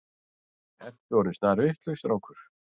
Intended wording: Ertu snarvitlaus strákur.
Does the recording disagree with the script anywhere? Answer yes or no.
yes